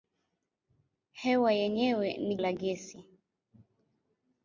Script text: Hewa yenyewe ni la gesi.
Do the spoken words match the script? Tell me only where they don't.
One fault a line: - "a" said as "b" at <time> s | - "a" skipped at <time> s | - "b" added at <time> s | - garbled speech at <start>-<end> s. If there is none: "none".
none